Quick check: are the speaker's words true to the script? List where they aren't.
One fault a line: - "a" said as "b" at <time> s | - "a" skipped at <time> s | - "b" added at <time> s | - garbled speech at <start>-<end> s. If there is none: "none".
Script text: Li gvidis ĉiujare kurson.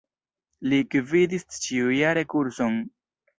none